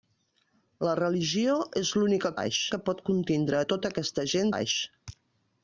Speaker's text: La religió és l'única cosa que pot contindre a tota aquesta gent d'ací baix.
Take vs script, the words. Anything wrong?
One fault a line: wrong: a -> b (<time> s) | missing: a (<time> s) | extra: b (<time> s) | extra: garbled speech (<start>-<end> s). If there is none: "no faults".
wrong: cosa -> baix (2.4 s)
missing: d'ací (4.5 s)